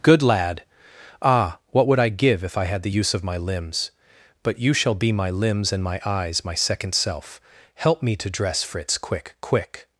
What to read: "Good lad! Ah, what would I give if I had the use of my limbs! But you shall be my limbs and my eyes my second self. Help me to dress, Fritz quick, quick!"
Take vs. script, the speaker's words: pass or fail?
pass